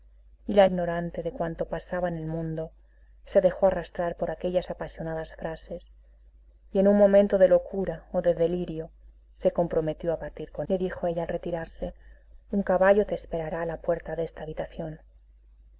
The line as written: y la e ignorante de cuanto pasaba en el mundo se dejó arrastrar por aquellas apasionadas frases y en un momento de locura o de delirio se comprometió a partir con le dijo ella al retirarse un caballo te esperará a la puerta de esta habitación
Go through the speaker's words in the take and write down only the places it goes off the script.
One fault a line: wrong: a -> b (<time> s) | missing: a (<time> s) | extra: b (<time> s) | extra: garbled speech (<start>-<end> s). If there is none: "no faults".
no faults